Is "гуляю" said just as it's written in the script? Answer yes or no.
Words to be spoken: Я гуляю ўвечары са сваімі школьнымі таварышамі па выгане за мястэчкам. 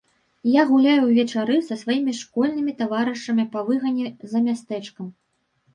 yes